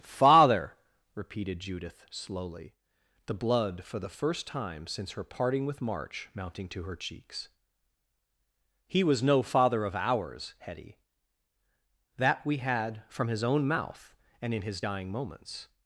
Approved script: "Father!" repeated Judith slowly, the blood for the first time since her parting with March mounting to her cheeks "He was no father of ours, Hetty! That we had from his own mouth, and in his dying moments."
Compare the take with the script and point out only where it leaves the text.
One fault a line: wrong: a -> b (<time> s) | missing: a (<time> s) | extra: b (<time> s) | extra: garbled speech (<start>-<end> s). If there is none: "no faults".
no faults